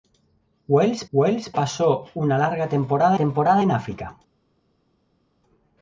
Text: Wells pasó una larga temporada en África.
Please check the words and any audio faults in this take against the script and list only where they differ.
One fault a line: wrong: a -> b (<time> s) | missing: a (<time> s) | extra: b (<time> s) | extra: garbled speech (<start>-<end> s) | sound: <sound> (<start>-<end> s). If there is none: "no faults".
extra: wells (1.1 s)
extra: temporada (3.1 s)